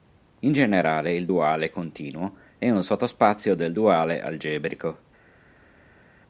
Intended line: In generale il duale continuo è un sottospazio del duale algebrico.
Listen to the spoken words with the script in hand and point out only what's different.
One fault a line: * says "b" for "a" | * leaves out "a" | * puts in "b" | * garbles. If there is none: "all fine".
all fine